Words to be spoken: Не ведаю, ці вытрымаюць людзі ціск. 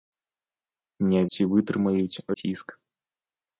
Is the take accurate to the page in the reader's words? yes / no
no